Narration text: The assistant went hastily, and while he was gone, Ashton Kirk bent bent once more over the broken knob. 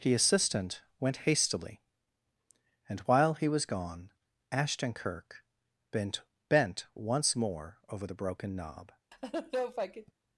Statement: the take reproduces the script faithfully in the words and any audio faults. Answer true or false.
false